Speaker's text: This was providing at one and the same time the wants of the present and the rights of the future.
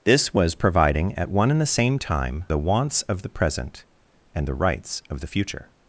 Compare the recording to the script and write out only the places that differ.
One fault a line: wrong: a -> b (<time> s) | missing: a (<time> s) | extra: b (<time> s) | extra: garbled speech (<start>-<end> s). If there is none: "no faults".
no faults